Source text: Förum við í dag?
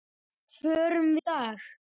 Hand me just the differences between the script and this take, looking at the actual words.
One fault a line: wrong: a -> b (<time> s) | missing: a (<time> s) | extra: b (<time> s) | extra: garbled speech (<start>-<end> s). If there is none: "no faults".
missing: við (1.1 s)